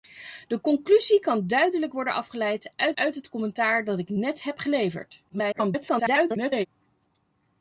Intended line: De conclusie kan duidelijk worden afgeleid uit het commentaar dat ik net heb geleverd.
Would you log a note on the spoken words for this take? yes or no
yes